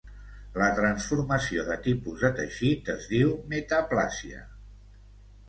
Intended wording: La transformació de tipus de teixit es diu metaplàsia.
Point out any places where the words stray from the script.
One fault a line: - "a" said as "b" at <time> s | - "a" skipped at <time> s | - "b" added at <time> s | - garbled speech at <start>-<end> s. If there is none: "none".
none